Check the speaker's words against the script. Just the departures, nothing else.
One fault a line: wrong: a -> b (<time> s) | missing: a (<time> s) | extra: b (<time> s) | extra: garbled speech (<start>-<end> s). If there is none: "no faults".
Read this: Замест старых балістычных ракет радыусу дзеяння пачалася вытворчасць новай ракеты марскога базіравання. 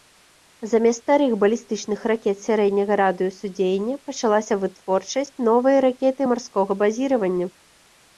extra: сярэдняга (2.5 s)